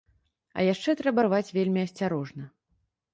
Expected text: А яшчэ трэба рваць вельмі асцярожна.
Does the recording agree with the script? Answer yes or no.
yes